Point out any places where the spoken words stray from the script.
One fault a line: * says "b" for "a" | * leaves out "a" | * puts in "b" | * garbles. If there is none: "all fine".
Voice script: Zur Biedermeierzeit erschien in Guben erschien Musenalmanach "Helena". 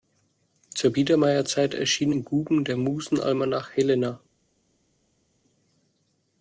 * says "der" for "erschien"